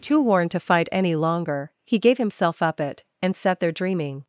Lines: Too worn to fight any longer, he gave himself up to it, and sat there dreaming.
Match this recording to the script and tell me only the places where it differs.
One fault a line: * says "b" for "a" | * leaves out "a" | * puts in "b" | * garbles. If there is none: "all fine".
* leaves out "to"